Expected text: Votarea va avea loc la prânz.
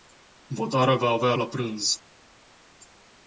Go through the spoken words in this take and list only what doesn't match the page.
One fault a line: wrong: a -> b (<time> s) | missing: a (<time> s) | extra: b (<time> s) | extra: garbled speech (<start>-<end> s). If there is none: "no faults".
missing: loc (1.3 s)